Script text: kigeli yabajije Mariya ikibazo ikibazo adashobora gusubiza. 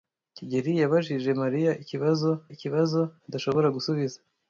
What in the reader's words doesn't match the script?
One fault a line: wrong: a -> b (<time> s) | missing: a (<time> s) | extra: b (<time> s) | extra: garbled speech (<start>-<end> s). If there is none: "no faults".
no faults